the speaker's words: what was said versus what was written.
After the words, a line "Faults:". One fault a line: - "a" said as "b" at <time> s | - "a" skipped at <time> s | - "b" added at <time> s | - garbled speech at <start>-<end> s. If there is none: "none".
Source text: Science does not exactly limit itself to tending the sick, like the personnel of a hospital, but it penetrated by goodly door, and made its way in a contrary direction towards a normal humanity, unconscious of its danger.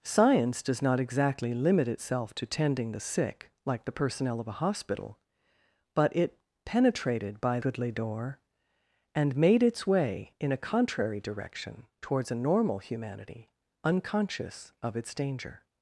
Science does not exactly limit itself to tending the sick, like the personnel of a hospital, but it penetrated by goodly door, and made its way in a contrary direction towards a normal humanity, unconscious of its danger.
Faults:
none